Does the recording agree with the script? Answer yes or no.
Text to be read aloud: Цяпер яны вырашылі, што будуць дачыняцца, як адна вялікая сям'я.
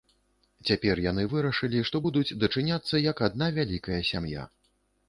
yes